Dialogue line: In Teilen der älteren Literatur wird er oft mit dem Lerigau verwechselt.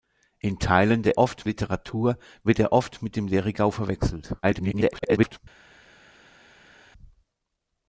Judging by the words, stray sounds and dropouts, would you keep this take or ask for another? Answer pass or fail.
fail